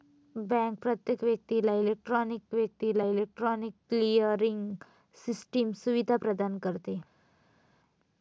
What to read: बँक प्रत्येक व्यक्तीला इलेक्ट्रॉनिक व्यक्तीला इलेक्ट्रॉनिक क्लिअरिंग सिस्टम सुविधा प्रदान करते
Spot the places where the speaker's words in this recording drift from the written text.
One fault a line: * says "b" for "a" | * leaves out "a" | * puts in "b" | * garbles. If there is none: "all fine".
all fine